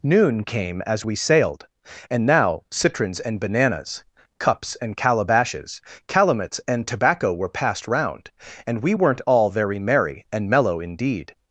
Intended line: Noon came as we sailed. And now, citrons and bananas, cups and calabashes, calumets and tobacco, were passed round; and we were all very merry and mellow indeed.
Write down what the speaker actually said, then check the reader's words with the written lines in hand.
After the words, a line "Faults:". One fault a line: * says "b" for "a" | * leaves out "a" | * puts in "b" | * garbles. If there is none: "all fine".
Noon came as we sailed. And now, citrons and bananas, cups and calabashes, calumets and tobacco, were passed round; and we weren't all very merry and mellow indeed.
Faults:
* says "weren't" for "were"